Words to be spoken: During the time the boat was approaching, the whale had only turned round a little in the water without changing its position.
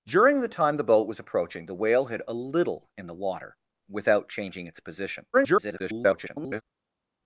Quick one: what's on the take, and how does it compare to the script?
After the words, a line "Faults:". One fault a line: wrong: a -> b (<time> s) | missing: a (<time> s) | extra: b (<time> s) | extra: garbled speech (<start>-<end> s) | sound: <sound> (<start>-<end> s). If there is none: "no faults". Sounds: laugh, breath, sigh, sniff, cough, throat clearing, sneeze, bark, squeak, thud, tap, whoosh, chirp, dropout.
During the time the boat was approaching, the whale had a little in the water without changing its position. [garbled]
Faults:
missing: only turned round (2.2 s)
extra: garbled speech (5.3-6.6 s)